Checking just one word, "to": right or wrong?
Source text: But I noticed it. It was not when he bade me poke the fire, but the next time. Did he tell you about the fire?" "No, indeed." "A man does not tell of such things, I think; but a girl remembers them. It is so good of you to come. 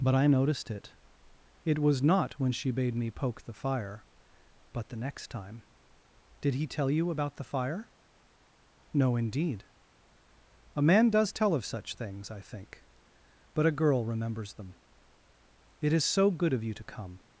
right